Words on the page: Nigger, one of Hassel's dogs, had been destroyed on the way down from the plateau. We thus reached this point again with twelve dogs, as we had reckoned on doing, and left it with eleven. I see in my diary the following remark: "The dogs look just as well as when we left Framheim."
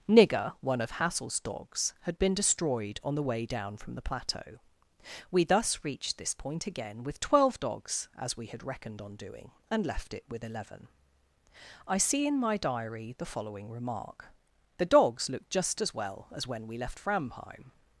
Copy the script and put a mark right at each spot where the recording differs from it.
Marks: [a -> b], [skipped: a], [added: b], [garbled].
Nigger, one of Hassel's dogs, had been destroyed on the way down from the plateau. We thus reached this point again with twelve dogs, as we had reckoned on doing, and left it with eleven. I see in my diary the following remark: "The dogs look just as well as when we left Framheim."